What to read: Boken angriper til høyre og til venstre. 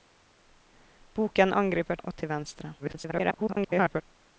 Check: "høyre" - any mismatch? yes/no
yes